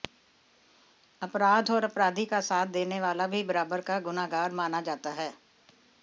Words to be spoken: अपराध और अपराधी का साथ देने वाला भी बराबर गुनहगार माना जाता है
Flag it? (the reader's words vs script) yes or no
yes